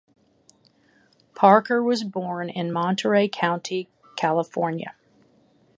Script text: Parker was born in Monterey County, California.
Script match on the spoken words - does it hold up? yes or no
yes